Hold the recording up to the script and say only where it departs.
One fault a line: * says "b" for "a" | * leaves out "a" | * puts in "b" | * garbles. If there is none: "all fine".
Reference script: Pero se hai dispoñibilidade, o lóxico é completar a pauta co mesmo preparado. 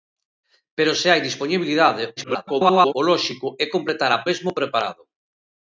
* garbles
* leaves out "pauta co"